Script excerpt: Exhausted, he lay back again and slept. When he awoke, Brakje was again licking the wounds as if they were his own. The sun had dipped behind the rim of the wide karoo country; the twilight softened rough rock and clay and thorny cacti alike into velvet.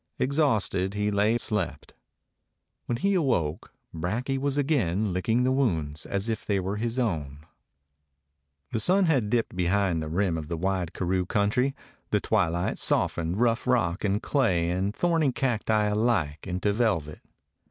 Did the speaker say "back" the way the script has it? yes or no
no